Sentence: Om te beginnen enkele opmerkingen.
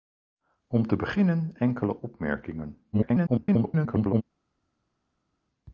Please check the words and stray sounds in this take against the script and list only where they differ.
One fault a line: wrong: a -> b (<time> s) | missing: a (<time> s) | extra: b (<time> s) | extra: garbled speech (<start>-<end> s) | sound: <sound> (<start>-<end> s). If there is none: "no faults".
extra: garbled speech (2.9-4.2 s)